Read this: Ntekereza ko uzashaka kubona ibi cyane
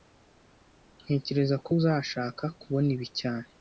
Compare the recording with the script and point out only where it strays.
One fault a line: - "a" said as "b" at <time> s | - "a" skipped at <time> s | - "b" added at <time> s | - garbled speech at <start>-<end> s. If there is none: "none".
none